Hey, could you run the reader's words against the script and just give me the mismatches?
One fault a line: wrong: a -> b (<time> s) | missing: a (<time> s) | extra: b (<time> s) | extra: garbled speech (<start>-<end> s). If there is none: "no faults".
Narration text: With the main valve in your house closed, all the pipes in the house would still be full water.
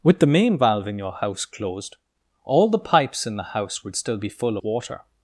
no faults